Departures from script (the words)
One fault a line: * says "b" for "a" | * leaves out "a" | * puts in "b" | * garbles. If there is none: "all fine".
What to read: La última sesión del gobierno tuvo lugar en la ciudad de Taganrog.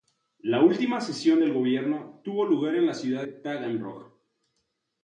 * leaves out "de"